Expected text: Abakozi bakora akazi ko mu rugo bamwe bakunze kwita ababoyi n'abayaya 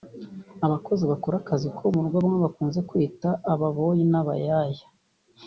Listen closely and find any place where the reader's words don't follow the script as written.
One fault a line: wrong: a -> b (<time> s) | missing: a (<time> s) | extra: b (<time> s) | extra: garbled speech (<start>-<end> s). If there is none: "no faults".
no faults